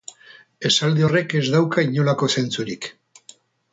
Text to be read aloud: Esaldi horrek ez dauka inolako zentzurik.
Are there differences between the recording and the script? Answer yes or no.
no